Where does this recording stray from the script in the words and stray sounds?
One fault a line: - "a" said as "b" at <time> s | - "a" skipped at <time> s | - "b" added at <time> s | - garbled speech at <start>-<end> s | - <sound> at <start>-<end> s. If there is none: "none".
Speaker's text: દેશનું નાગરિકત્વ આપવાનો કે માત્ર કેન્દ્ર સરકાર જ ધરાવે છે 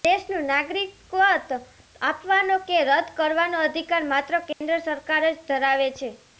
- "રદ કરવાનો અધિકાર" added at 2.8 s
- dropout at 4.5-4.6 s